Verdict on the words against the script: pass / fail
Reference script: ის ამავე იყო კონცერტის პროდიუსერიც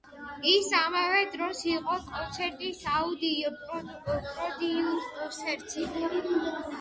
fail